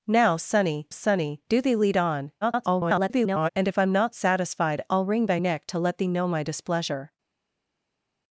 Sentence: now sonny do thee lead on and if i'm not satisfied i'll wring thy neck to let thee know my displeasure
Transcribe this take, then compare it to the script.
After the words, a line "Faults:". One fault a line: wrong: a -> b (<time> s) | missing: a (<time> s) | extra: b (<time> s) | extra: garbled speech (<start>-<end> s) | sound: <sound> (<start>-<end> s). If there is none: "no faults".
now sonny sonny do thee lead on [garbled] and if i'm not satisfied i'll wring thy neck to let thee know my displeasure
Faults:
extra: sonny (0.9 s)
extra: garbled speech (2.4-3.5 s)